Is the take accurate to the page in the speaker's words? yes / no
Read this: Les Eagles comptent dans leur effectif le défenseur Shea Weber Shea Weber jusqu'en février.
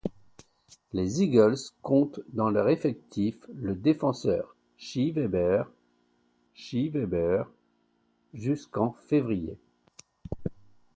yes